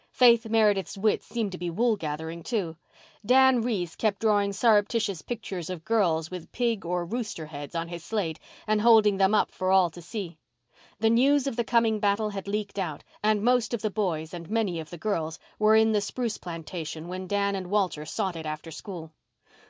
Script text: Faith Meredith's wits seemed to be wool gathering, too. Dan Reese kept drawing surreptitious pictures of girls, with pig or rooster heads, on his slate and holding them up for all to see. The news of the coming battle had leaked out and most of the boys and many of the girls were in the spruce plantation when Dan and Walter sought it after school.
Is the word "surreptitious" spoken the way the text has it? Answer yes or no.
yes